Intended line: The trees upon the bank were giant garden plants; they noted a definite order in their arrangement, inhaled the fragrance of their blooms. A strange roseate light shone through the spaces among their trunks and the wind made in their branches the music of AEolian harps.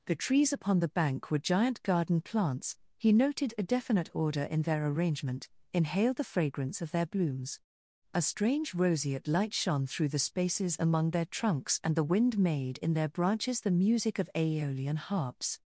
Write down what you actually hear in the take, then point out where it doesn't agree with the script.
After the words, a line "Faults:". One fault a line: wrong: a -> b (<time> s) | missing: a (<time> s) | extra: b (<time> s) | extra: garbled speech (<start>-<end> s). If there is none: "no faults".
The trees upon the bank were giant garden plants; he noted a definite order in their arrangement, inhaled the fragrance of their blooms. A strange roseate light shone through the spaces among their trunks and the wind made in their branches the music of AEolian harps.
Faults:
wrong: they -> he (3.0 s)